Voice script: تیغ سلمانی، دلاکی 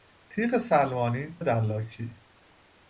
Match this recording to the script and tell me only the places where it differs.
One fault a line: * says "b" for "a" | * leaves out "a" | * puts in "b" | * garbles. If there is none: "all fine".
all fine